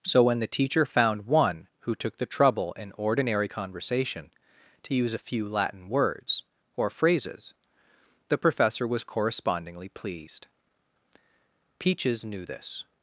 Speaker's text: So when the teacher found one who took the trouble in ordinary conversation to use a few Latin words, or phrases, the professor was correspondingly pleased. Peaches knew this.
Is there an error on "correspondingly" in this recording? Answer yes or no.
no